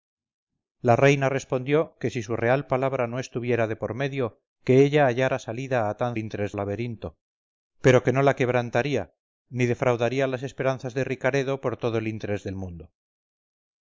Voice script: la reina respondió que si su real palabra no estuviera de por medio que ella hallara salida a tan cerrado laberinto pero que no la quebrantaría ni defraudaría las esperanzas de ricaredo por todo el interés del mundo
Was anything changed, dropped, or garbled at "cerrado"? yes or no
yes